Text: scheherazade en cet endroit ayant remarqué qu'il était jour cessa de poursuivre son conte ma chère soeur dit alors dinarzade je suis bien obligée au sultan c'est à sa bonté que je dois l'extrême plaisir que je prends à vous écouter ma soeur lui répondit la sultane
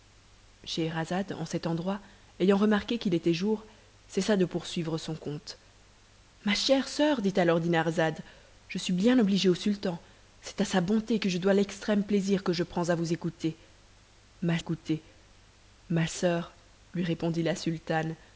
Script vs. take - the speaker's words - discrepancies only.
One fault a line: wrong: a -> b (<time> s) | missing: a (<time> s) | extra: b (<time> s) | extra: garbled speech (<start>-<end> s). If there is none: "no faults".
extra: écouter ma (14.6 s)